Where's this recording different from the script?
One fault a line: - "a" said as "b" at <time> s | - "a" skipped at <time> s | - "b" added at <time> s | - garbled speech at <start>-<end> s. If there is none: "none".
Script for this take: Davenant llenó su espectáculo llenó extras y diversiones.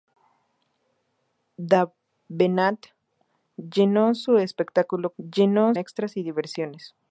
none